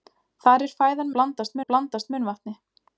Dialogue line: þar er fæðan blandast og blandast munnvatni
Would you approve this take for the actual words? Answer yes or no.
yes